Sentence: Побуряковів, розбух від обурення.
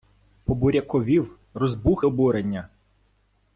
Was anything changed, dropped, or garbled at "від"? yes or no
yes